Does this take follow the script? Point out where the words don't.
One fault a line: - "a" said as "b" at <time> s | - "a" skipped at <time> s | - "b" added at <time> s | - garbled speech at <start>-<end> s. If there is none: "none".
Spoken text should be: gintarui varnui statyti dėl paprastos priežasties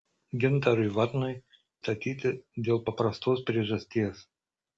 none